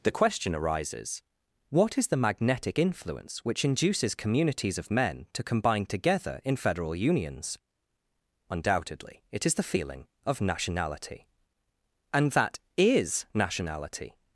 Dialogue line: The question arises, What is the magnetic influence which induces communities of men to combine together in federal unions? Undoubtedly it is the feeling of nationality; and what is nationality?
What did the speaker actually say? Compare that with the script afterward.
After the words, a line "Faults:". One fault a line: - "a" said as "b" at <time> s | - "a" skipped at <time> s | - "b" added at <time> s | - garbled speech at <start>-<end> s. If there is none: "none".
The question arises, What is the magnetic influence which induces communities of men to combine together in federal unions? Undoubtedly it is the feeling of nationality; and that is nationality?
Faults:
- "what" said as "that" at 12.3 s